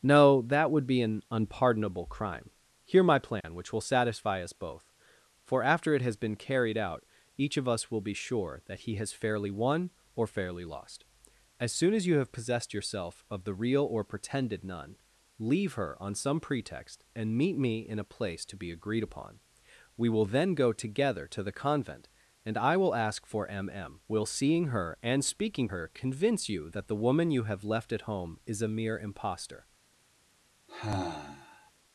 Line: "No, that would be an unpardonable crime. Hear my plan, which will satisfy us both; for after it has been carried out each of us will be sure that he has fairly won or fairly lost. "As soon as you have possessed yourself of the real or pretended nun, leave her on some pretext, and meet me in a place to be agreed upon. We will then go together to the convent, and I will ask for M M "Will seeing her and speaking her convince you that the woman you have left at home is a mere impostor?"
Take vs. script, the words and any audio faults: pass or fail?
fail